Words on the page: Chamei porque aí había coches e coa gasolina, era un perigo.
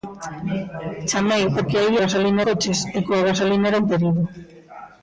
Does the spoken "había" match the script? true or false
false